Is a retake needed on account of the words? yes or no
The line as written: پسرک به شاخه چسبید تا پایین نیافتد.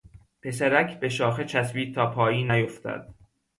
no